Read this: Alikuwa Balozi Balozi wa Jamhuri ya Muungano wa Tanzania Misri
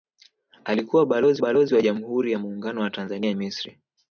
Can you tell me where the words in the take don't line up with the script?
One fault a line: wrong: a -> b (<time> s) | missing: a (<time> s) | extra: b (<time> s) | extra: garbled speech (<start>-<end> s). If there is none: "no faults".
no faults